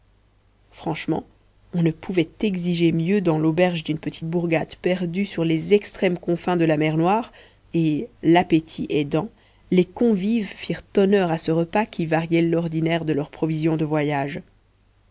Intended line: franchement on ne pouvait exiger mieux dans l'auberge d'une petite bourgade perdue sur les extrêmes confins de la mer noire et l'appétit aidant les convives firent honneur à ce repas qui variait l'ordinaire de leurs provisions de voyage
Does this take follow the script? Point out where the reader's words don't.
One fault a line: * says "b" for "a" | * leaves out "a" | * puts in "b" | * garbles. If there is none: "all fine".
all fine